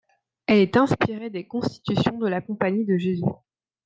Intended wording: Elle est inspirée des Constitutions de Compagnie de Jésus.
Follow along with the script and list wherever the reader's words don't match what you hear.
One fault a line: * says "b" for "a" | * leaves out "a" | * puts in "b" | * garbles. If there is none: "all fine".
* puts in "la"